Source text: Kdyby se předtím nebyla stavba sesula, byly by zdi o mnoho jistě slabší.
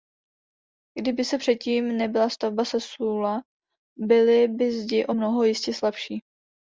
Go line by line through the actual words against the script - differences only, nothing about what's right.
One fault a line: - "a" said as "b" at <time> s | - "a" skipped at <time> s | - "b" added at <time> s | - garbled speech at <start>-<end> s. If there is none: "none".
none